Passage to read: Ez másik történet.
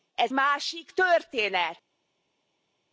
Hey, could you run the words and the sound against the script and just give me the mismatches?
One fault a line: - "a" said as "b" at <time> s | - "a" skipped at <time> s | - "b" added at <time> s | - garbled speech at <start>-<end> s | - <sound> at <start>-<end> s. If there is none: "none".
none